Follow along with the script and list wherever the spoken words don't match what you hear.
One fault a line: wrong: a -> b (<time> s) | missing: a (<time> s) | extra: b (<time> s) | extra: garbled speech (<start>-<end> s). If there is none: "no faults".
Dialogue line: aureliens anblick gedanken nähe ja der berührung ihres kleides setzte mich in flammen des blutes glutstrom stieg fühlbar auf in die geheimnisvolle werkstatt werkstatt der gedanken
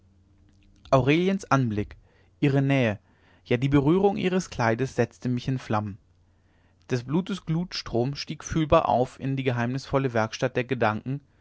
wrong: gedanken -> ihre (2.4 s)
wrong: der -> die (3.6 s)
missing: werkstatt (10.5 s)